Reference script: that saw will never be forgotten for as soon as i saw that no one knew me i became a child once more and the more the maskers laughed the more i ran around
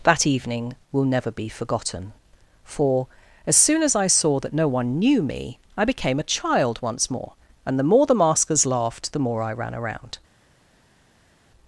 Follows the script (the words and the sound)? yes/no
no